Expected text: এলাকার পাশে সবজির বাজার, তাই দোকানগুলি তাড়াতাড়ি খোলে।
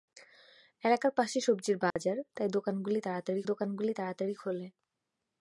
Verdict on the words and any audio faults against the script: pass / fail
fail